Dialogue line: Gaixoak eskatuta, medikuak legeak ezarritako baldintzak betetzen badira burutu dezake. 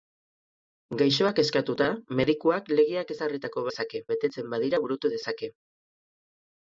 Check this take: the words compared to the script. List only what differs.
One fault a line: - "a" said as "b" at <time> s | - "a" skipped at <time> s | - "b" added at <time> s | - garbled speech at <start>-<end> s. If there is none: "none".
- "baldintzak" said as "dezake" at 3.7 s